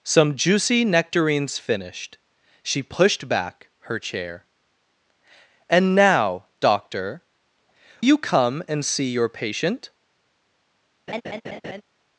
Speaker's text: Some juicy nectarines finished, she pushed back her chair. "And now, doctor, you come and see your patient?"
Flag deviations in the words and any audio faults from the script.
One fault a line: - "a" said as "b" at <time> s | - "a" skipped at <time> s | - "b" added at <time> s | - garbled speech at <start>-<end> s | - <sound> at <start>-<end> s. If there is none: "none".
- laugh at 11.1-11.8 s